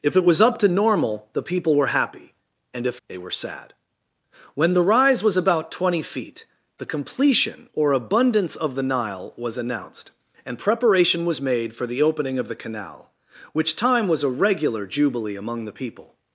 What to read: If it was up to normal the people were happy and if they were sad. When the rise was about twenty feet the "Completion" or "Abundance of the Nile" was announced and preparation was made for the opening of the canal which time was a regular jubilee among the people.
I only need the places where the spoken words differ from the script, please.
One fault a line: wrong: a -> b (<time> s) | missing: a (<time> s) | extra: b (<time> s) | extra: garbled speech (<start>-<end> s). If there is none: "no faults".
no faults